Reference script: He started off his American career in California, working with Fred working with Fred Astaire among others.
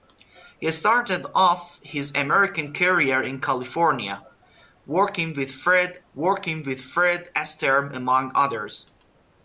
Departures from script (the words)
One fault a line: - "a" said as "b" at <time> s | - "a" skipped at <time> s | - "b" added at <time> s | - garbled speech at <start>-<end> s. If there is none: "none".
none